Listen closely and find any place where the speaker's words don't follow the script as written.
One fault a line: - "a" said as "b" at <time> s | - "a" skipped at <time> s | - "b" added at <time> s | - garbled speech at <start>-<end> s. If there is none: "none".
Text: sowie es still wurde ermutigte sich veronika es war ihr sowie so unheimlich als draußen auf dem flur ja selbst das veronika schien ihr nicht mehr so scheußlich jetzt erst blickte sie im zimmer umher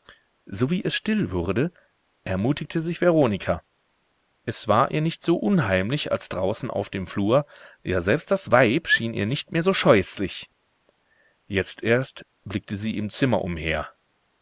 - "sowie" said as "nicht" at 5.0 s
- "veronika" said as "weib" at 8.5 s